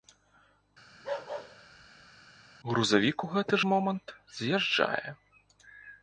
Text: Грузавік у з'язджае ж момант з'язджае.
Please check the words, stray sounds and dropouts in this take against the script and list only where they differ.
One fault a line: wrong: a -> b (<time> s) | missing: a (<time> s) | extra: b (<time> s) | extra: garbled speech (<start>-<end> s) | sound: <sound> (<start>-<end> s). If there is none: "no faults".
sound: bark (0.9-2.3 s)
wrong: з'язджае -> гэты (3.3 s)